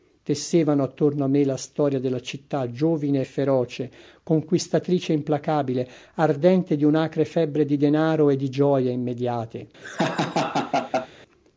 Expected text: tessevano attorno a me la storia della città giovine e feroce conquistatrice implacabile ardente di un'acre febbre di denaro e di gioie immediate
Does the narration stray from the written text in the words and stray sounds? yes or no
yes